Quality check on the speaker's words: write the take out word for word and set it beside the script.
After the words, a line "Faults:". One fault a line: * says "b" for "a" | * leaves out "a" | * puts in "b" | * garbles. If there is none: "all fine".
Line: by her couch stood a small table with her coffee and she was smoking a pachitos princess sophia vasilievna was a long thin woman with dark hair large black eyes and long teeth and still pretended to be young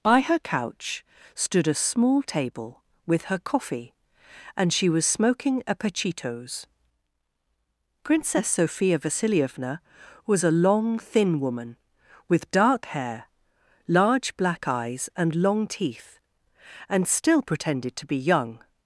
by her couch stood a small table with her coffee and she was smoking a pachitos princess sophia vasilievna was a long thin woman with dark hair large black eyes and long teeth and still pretended to be young
Faults:
all fine